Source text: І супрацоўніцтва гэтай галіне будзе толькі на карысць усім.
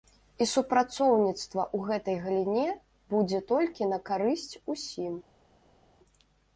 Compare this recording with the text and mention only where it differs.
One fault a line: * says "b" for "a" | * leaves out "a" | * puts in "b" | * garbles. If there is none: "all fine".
* puts in "ў"